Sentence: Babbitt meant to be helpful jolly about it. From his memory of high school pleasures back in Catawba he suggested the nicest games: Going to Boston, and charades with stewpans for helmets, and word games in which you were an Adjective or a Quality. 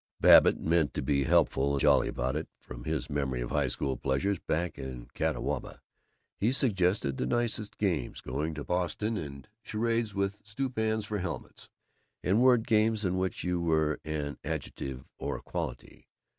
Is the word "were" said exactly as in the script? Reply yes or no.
yes